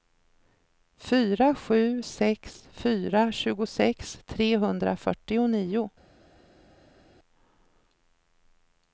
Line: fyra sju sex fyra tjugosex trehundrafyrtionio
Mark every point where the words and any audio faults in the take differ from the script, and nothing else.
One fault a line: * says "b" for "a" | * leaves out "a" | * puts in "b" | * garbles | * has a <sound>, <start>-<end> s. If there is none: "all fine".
all fine